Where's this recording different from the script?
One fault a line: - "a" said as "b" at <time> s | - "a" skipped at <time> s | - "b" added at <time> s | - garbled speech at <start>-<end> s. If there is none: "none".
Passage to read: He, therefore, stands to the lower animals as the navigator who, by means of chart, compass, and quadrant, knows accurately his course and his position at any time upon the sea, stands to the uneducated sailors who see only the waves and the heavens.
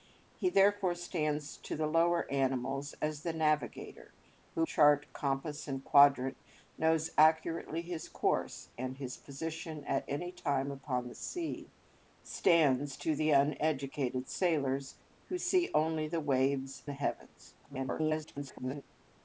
- "by means of" skipped at 4.7 s
- "and" skipped at 16.8 s
- garbled speech at 17.6-18.8 s